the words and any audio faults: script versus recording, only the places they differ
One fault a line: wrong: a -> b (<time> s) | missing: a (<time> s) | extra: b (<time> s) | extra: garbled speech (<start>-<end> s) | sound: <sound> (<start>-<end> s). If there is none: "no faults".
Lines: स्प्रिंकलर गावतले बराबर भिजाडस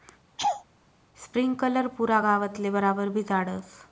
sound: laugh (0.4-0.6 s)
extra: पुरा (2.0 s)